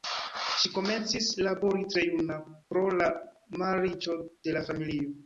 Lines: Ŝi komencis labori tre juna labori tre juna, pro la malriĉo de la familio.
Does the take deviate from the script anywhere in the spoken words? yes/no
yes